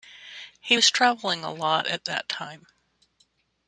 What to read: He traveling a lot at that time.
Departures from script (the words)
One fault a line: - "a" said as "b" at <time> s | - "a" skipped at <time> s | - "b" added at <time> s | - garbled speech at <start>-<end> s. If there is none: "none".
- "was" added at 0.7 s